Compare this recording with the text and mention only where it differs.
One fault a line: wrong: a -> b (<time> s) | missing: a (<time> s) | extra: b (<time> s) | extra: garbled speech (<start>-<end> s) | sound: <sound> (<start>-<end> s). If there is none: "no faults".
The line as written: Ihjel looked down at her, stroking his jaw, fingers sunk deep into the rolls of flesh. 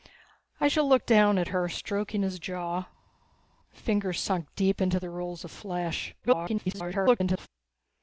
extra: garbled speech (6.2-7.5 s)